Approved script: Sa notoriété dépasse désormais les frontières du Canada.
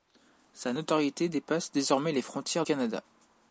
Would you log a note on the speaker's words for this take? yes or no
yes